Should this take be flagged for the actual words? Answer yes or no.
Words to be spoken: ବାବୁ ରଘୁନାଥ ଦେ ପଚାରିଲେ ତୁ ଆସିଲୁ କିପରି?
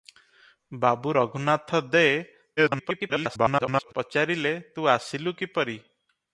yes